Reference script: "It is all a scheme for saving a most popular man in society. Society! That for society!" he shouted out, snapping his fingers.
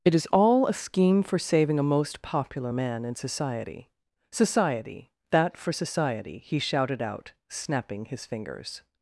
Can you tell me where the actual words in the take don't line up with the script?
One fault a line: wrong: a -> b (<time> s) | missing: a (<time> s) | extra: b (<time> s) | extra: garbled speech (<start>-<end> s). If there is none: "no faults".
no faults